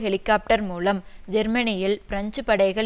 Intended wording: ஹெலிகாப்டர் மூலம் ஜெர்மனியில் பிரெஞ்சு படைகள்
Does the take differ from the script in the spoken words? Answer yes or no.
no